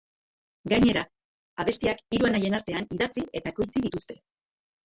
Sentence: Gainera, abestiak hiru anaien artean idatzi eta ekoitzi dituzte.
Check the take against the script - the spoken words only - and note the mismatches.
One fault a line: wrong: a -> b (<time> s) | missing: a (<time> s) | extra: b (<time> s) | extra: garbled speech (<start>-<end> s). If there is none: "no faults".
no faults